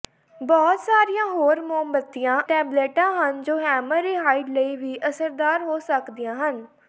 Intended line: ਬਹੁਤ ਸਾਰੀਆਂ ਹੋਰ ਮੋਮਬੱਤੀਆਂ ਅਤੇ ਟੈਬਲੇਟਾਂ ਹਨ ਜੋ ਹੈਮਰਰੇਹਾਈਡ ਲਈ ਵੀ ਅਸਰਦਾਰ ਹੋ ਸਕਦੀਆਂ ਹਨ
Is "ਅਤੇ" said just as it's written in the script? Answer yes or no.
no